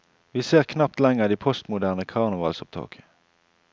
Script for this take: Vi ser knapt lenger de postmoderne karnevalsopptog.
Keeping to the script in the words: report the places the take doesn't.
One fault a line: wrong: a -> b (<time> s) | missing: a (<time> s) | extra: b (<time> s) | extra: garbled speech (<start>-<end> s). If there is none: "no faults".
no faults